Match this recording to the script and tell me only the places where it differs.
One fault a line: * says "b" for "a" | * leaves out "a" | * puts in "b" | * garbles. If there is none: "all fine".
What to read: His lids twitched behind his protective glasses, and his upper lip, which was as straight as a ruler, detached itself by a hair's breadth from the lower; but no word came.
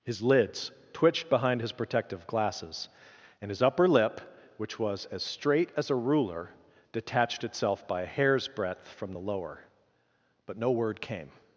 all fine